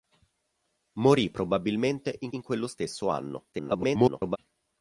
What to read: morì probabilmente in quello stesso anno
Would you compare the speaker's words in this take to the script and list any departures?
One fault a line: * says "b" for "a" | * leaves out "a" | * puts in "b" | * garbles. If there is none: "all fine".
* puts in "in"
* garbles